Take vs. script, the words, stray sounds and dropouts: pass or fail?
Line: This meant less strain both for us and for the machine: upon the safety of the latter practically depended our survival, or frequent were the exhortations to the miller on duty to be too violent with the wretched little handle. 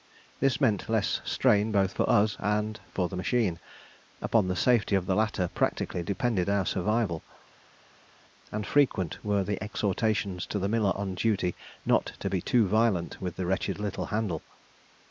fail